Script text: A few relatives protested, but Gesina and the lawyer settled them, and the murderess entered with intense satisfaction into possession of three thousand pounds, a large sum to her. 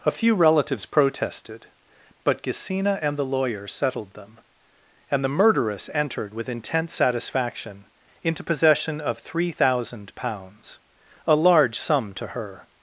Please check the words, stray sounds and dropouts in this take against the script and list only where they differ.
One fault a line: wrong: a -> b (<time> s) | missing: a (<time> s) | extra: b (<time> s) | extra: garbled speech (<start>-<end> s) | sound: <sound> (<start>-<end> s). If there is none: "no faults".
no faults